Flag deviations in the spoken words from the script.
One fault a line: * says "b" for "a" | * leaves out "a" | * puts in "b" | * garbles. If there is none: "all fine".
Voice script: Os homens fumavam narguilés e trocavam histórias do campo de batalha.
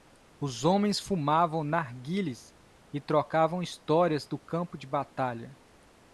all fine